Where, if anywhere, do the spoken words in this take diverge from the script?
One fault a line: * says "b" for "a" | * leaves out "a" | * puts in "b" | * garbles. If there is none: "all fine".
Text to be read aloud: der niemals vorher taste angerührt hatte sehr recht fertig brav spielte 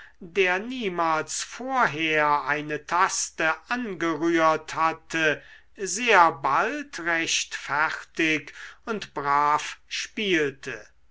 * puts in "eine"
* puts in "bald"
* puts in "und"